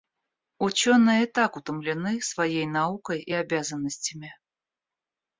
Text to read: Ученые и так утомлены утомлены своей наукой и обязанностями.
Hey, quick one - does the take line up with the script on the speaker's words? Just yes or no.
no